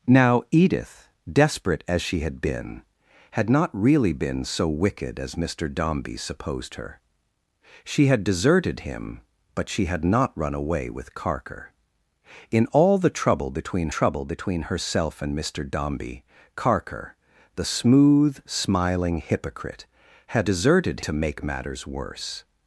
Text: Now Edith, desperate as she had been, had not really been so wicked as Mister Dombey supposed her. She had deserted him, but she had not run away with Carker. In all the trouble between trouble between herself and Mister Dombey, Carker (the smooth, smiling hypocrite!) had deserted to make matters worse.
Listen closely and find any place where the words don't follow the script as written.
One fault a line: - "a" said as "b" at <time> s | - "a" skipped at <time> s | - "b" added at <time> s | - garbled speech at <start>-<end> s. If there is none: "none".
none